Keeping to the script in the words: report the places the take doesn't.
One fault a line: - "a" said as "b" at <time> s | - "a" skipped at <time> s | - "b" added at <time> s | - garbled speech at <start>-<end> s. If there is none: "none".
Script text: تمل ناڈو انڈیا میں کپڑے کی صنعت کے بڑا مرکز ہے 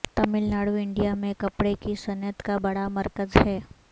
- "کے" said as "کا" at 2.4 s